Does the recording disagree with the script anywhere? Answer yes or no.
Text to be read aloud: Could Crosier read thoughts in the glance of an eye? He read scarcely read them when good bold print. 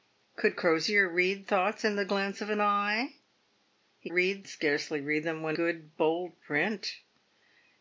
no